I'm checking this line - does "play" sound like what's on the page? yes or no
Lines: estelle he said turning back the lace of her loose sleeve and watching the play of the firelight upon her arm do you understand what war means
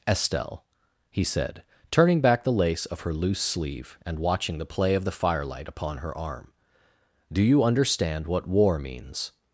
yes